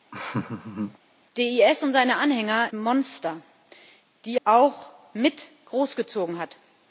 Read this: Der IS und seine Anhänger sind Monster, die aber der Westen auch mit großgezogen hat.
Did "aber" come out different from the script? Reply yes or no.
yes